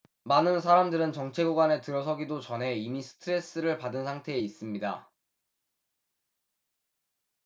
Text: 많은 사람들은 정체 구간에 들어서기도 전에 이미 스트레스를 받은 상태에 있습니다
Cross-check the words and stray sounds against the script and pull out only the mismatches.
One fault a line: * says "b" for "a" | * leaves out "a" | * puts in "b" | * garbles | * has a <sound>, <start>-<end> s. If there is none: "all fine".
all fine